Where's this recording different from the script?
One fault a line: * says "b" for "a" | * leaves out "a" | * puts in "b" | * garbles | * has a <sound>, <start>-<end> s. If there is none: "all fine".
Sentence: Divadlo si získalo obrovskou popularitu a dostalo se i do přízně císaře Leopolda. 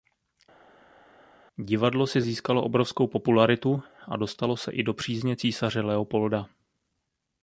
all fine